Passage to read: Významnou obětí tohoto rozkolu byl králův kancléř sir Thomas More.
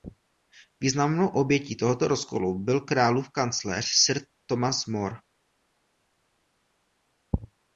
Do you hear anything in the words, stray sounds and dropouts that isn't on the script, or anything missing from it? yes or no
no